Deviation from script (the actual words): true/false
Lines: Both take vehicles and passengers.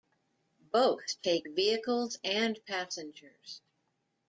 false